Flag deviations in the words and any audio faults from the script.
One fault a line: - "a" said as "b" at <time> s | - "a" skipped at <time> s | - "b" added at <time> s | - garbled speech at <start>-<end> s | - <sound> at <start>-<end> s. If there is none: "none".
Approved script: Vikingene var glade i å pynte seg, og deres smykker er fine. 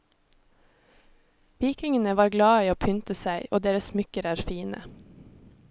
none